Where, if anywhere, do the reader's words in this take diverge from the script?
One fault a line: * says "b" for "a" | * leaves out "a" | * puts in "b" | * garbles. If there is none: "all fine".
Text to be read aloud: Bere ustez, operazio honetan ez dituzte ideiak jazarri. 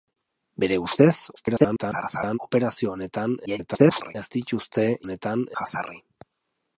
* garbles
* garbles
* says "honetan" for "ideiak"